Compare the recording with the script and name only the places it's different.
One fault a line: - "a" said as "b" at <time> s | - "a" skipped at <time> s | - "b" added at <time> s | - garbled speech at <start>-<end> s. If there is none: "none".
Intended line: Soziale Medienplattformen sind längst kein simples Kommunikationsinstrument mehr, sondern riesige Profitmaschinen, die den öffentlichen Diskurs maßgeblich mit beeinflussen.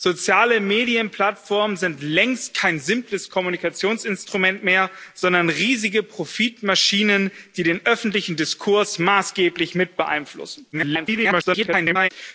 - garbled speech at 10.7-12.1 s